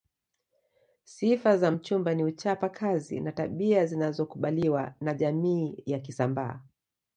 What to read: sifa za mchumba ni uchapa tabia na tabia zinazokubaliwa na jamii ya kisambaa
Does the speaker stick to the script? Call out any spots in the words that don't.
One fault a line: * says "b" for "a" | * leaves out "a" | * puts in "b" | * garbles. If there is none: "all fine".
* says "kazi" for "tabia"